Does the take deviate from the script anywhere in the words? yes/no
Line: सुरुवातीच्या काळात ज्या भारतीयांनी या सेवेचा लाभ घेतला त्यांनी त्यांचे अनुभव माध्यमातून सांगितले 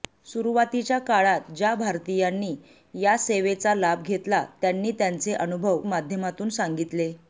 no